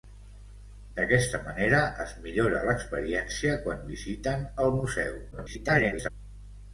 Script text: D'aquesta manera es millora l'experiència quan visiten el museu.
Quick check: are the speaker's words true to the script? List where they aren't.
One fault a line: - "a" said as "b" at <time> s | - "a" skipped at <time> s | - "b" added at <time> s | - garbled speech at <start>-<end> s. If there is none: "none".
- garbled speech at 5.3-6.1 s